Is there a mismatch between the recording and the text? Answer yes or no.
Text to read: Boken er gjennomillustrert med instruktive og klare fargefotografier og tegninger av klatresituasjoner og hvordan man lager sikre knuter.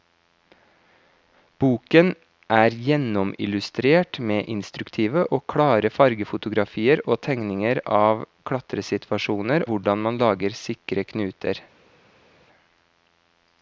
yes